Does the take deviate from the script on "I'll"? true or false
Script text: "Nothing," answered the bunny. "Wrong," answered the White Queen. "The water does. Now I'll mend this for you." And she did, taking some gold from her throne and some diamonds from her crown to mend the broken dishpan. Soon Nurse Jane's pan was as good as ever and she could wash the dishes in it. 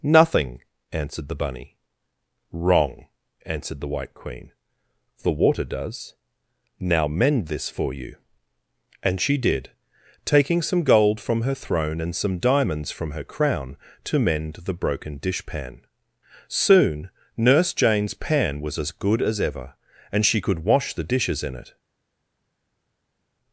true